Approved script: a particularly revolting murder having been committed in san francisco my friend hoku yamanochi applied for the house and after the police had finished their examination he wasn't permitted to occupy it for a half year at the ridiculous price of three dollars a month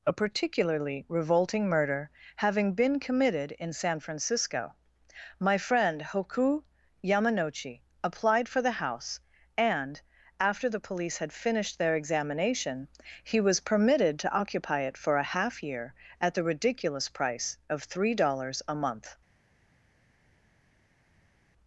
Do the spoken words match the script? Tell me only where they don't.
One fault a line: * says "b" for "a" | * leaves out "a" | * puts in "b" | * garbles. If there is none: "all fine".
* says "was" for "wasn't"